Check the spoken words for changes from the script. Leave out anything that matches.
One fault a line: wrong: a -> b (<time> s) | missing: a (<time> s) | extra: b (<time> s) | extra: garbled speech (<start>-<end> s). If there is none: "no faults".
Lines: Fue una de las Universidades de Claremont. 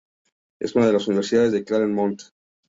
wrong: Fue -> Es (0.6 s)